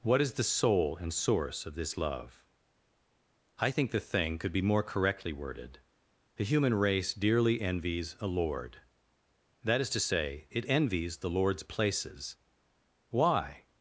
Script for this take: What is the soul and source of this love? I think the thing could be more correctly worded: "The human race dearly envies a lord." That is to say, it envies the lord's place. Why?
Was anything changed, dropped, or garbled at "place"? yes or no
yes